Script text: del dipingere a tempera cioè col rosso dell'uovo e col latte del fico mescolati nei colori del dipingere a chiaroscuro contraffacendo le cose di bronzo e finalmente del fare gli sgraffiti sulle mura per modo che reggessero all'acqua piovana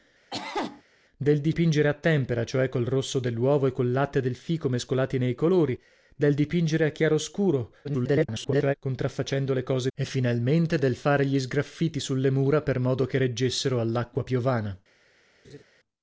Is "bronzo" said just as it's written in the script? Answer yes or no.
no